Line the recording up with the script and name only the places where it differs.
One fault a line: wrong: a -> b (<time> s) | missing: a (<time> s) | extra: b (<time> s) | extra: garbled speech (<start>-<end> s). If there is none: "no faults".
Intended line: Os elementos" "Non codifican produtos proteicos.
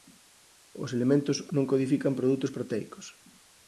no faults